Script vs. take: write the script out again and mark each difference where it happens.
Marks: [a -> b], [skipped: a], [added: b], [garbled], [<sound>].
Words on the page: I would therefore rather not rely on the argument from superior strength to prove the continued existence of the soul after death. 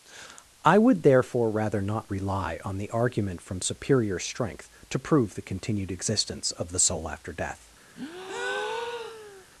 I would therefore rather not rely on the argument from superior strength to prove the continued existence of the soul after death. [breath]